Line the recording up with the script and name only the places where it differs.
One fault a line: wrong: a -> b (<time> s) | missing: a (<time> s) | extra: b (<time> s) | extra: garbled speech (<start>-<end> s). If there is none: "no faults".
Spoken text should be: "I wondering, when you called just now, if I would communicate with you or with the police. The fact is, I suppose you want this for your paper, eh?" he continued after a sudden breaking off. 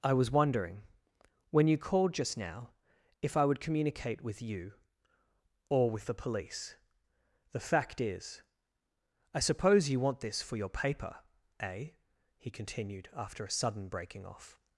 extra: was (0.1 s)